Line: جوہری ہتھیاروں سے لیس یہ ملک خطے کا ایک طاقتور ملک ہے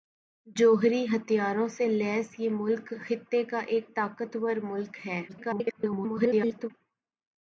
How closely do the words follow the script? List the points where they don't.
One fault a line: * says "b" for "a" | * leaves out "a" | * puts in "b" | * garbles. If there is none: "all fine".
* garbles